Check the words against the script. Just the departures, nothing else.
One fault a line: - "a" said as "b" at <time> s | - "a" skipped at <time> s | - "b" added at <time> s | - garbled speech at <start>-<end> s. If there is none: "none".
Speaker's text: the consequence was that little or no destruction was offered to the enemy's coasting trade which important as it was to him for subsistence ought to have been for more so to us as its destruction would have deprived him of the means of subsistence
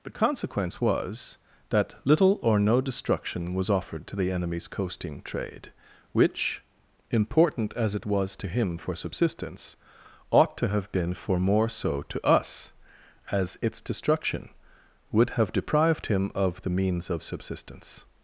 none